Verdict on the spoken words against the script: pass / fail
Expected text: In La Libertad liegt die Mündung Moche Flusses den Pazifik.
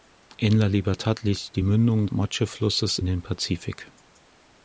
pass